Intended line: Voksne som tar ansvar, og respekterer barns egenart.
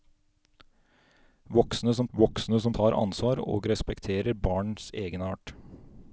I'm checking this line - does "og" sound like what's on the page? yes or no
yes